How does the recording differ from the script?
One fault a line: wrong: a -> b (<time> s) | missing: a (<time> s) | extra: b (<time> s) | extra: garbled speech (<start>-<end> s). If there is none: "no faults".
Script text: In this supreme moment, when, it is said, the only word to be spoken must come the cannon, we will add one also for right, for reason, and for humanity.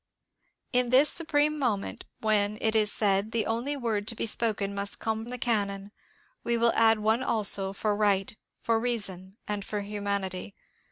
no faults